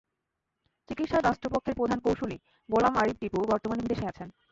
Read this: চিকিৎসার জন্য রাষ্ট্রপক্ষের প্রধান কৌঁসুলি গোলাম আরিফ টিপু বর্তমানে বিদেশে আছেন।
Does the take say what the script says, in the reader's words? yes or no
no